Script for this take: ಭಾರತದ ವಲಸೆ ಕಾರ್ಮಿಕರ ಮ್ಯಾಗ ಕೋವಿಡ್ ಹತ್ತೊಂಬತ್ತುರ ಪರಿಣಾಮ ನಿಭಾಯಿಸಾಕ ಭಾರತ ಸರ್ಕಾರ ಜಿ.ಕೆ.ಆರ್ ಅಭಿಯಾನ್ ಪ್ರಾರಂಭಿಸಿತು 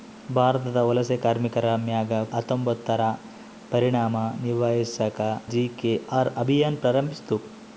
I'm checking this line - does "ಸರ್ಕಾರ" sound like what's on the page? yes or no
no